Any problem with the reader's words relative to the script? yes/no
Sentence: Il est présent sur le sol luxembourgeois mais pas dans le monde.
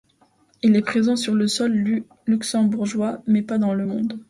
no